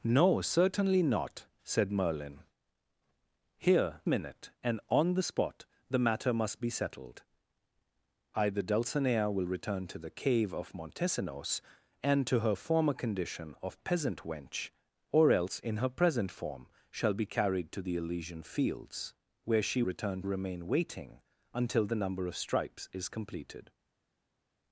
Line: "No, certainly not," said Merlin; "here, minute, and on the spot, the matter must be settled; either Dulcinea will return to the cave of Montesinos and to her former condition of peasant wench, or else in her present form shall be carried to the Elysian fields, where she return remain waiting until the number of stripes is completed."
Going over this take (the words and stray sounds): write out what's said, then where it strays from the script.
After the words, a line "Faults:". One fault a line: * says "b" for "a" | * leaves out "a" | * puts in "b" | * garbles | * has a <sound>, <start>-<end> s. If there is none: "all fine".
"No, certainly not," said Merlin; "here, minute, and on the spot, the matter must be settled; either Dulcinea will return to the cave of Montesinos and to her former condition of peasant wench, or else in her present form shall be carried to the Elysian fields, where she return remain waiting until the number of stripes is completed."
Faults:
all fine